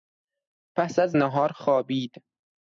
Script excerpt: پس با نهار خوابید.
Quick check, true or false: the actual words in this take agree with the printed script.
false